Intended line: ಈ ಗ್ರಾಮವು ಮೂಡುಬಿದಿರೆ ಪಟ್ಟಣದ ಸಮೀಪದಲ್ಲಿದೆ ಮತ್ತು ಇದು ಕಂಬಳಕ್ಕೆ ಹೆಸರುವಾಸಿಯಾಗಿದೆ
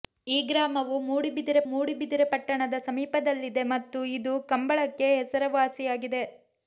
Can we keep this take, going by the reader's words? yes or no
no